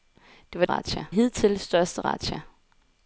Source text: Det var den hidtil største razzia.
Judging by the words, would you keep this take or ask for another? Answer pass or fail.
fail